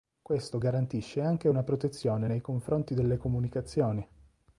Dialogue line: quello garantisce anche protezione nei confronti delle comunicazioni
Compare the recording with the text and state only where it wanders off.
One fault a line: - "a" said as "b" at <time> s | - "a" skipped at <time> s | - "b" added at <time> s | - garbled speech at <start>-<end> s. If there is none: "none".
- "quello" said as "questo" at 0.2 s
- "una" added at 1.5 s